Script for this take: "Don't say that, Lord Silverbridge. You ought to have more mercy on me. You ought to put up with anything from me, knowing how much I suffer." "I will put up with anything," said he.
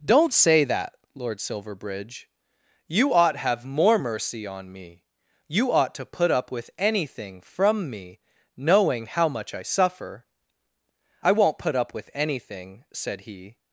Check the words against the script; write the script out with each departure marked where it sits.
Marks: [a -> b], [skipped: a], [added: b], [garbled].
"Don't say that, Lord Silverbridge. You ought [skipped: to] have more mercy on me. You ought to put up with anything from me, knowing how much I suffer." "I [will -> won't] put up with anything," said he.